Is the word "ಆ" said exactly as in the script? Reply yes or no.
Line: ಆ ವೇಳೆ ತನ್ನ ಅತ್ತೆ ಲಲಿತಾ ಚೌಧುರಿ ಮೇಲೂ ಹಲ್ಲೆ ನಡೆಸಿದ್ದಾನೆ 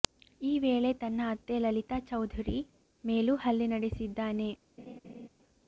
no